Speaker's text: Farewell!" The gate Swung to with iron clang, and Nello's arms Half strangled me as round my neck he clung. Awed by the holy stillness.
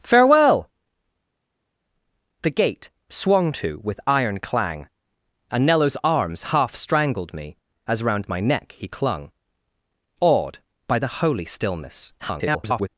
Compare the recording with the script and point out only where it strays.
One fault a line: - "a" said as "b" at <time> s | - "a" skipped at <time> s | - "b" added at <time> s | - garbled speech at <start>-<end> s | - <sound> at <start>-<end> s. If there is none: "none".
- garbled speech at 12.2-12.9 s